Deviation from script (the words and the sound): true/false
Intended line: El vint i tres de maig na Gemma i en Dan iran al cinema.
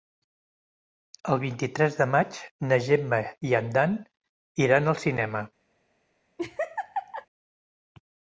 true